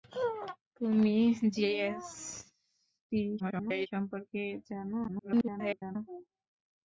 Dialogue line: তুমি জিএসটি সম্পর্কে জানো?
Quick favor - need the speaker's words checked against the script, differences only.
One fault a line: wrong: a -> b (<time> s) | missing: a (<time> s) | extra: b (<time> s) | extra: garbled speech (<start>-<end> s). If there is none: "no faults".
extra: garbled speech (3.4-3.9 s)
extra: garbled speech (5.1-6.0 s)